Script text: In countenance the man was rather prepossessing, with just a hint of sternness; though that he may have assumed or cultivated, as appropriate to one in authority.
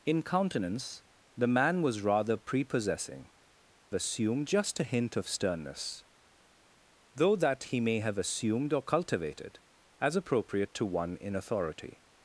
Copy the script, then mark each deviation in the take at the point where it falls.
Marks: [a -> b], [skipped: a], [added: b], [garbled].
In countenance the man was rather prepossessing, [with -> assumed] just a hint of sternness; though that he may have assumed or cultivated, as appropriate to one in authority.